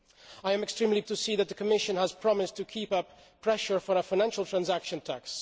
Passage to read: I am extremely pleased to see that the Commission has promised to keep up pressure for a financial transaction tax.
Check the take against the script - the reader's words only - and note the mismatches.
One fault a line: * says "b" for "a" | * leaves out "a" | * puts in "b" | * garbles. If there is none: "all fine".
* leaves out "pleased"